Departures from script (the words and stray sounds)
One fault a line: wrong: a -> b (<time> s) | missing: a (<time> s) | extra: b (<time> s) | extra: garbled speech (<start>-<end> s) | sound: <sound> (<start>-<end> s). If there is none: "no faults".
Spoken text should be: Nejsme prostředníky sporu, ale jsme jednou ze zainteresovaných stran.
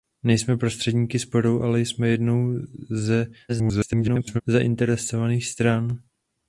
extra: garbled speech (3.5-4.4 s)